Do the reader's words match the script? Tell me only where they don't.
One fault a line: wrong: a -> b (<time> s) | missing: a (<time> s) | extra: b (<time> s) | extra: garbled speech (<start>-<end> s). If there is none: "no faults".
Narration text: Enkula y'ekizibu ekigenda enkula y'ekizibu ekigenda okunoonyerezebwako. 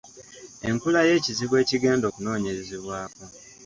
missing: enkula y'ekizibu ekigenda (2.0 s)